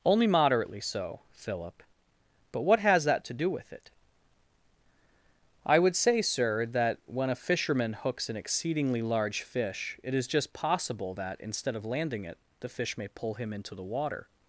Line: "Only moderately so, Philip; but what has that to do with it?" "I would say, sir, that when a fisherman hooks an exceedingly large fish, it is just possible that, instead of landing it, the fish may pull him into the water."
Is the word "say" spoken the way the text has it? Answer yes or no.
yes